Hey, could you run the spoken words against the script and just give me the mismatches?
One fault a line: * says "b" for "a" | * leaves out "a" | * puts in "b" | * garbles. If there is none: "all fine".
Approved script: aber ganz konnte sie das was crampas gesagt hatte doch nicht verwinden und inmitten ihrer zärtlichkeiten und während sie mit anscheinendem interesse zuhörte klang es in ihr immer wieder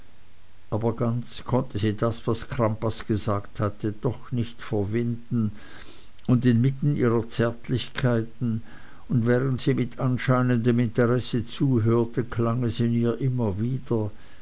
all fine